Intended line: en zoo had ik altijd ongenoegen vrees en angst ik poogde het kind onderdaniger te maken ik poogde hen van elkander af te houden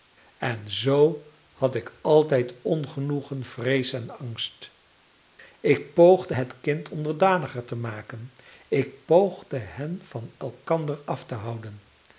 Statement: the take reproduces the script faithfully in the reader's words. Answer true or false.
true